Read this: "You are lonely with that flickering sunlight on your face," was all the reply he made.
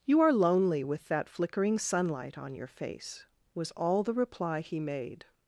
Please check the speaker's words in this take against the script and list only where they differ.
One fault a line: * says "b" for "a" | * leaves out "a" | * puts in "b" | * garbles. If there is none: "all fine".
all fine